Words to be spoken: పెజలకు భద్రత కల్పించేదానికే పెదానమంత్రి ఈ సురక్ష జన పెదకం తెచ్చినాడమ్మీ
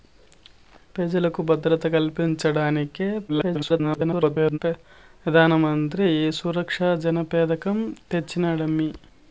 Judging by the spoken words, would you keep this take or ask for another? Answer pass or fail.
fail